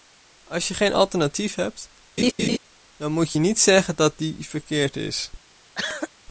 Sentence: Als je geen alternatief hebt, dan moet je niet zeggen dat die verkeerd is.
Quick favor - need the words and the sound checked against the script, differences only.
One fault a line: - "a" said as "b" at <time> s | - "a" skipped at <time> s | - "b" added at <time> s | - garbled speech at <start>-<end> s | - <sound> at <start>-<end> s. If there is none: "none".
- laugh at 2.2-2.6 s
- cough at 5.8-6.1 s